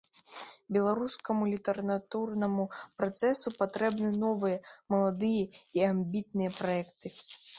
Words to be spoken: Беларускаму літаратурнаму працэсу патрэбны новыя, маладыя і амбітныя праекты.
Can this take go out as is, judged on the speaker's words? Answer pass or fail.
pass